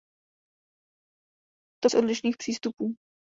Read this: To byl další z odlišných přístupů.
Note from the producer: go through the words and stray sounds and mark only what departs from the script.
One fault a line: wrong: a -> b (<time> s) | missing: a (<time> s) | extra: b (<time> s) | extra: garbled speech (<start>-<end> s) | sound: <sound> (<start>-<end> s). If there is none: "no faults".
missing: byl další (1.9 s)